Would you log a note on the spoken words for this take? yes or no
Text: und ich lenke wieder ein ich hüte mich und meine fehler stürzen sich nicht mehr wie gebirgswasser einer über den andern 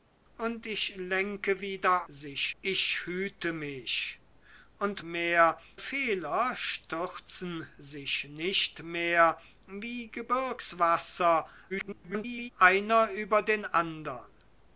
yes